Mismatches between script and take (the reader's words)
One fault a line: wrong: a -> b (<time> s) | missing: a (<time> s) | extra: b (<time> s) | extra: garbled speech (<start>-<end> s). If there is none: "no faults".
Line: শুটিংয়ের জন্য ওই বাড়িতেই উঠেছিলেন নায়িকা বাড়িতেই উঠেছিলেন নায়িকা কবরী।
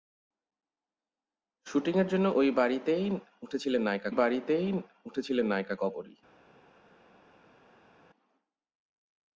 no faults